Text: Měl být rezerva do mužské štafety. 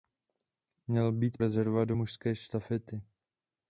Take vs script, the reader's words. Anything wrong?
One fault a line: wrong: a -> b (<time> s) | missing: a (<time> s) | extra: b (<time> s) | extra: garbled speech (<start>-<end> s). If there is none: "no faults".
no faults